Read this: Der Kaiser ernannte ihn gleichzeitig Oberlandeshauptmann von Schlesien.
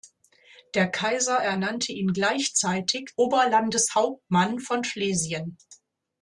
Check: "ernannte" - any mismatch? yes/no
no